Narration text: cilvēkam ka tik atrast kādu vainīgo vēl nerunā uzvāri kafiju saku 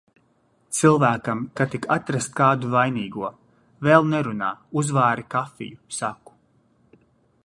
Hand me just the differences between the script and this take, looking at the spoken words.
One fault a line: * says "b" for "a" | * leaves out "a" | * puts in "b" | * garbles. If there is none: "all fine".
all fine